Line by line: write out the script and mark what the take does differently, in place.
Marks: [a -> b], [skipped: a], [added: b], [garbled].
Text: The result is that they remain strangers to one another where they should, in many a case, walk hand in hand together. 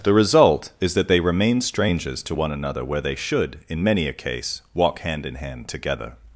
The result is that they remain strangers to one another where they should, in many a case, walk hand in hand together.